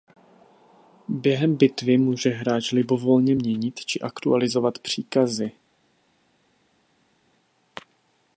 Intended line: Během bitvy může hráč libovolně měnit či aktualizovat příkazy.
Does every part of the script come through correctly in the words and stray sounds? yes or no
yes